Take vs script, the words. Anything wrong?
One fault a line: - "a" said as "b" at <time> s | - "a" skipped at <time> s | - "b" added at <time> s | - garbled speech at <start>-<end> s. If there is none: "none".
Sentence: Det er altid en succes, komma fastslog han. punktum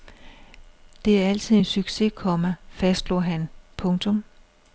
none